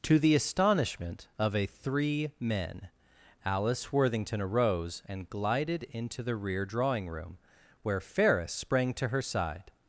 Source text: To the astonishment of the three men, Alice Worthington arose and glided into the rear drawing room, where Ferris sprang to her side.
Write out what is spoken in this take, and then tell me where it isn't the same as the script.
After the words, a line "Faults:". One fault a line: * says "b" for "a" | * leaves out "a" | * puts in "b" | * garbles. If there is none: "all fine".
To the astonishment of a three men, Alice Worthington arose and glided into the rear drawing room, where Ferris sprang to her side.
Faults:
* says "a" for "the"